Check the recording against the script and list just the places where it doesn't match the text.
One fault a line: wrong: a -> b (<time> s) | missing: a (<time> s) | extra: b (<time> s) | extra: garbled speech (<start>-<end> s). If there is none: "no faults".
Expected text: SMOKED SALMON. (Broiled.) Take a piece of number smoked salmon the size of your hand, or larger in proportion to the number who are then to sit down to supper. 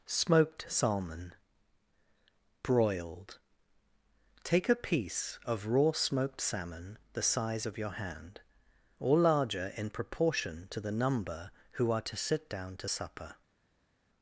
wrong: number -> raw (5.7 s)
missing: then (12.0 s)